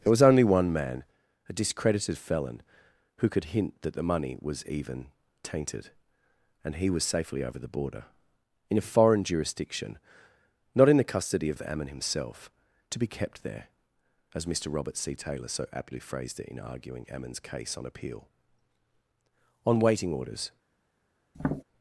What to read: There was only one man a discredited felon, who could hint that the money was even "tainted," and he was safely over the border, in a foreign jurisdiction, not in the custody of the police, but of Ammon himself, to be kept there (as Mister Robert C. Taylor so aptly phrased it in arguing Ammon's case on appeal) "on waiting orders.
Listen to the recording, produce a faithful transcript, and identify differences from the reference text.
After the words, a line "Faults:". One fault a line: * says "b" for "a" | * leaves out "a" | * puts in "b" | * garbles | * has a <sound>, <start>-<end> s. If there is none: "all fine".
There was only one man a discredited felon, who could hint that the money was even "tainted," and he was safely over the border, in a foreign jurisdiction, not in the custody of of Ammon himself, to be kept there (as Mister Robert C. Taylor so aptly phrased it in arguing Ammon's case on appeal) "on waiting orders.
Faults:
* leaves out "the police but"
* has a tap, 21.3-21.6 s